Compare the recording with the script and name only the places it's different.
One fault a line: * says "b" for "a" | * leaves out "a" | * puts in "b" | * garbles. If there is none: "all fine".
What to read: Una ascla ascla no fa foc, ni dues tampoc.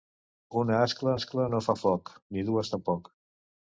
all fine